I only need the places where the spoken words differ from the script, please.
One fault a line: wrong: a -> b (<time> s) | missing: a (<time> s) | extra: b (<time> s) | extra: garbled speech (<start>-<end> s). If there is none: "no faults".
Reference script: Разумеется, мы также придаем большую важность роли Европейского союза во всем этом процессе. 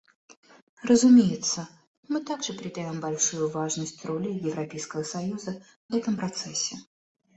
missing: во всем (5.6 s)